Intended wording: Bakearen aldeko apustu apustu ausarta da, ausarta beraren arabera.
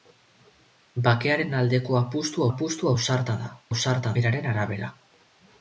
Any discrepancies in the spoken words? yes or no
no